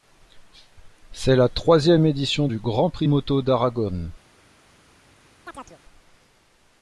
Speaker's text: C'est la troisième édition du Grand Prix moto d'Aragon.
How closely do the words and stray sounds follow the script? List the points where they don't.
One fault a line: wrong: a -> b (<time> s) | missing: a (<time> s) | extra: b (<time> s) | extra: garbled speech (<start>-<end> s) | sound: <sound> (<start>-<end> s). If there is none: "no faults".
sound: chirp (5.5-5.8 s)